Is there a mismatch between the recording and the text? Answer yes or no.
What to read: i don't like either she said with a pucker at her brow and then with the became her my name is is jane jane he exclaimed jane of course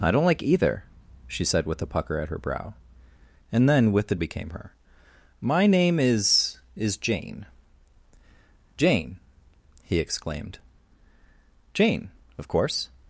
no